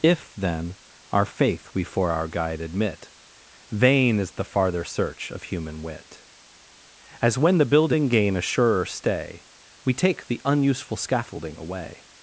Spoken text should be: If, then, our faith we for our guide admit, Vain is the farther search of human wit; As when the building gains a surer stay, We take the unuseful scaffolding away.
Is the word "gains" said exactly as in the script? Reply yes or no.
no